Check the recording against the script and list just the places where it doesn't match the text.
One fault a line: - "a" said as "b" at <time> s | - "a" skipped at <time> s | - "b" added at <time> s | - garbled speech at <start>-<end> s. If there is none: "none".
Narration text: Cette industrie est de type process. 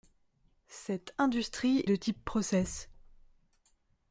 - "est" skipped at 1.8 s